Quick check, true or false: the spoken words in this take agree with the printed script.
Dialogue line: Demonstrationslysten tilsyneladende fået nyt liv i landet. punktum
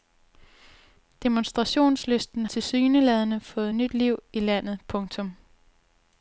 true